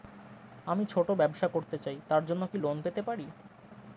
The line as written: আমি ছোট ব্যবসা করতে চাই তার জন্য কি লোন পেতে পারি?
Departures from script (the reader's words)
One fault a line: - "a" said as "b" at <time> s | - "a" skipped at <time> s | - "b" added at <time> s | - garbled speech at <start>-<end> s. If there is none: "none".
none